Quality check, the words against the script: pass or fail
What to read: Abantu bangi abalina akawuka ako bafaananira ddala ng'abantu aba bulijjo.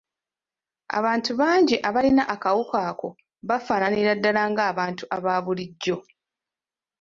pass